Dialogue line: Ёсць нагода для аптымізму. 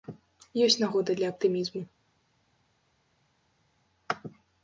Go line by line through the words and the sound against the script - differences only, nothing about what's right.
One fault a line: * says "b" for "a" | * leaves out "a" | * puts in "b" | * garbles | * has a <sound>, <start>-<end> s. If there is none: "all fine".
all fine